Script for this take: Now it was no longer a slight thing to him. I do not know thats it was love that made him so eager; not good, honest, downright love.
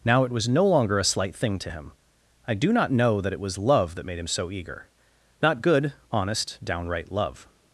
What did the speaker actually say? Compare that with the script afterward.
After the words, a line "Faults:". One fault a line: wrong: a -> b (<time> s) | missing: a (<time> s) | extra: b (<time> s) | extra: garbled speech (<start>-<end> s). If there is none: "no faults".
Now it was no longer a slight thing to him. I do not know that it was love that made him so eager; not good, honest, downright love.
Faults:
wrong: thats -> that (3.2 s)